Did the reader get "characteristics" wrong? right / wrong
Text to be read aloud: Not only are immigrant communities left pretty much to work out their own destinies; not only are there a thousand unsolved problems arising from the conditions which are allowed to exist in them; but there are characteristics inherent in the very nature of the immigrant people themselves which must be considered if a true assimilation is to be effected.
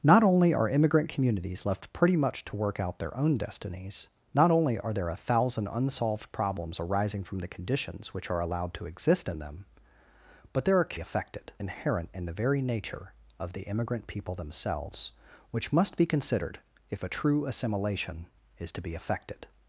wrong